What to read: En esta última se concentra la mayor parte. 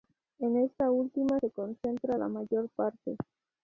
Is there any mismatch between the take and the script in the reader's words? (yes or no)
no